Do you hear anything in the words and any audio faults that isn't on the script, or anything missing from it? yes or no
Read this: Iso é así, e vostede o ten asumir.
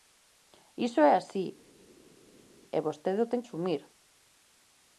no